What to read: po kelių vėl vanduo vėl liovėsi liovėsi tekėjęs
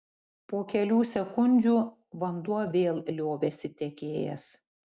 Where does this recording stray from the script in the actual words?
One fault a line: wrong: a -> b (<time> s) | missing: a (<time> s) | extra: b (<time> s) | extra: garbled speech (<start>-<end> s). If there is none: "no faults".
wrong: vėl -> sekundžių (1.1 s)
missing: liovėsi (3.7 s)